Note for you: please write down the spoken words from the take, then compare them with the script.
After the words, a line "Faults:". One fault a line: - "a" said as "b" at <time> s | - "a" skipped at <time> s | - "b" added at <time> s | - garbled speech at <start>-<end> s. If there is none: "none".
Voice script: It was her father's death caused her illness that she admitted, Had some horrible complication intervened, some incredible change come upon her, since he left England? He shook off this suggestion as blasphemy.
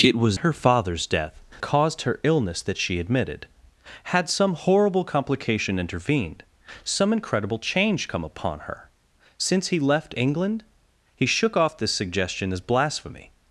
It was her father's death caused her illness that she admitted, Had some horrible complication intervened, some incredible change come upon her, since he left England? He shook off this suggestion as blasphemy.
Faults:
none